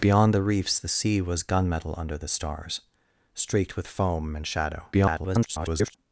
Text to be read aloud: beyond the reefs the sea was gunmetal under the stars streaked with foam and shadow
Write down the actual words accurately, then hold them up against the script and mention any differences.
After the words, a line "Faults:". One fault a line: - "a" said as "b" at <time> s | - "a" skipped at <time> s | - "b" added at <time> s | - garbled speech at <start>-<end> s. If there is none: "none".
beyond the reefs the sea was gunmetal under the stars streaked with foam and shadow [garbled]
Faults:
- garbled speech at 4.9-5.9 s